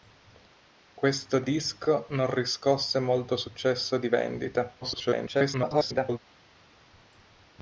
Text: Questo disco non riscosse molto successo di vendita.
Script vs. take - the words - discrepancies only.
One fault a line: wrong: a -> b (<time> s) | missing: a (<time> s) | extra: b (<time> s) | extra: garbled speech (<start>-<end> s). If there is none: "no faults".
extra: garbled speech (4.8-6.2 s)